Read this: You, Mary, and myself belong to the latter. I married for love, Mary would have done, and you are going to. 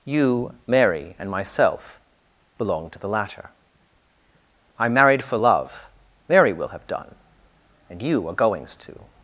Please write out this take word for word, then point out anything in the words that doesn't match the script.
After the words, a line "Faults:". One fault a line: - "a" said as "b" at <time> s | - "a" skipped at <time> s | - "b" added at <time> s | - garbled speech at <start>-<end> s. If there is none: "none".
You, Mary, and myself belong to the latter. I married for love, Mary will have done, and you are goings to.
Faults:
- "would" said as "will" at 6.5 s
- "going" said as "goings" at 8.3 s